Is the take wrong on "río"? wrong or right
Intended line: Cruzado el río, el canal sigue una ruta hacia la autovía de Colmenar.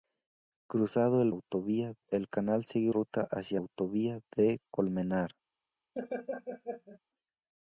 wrong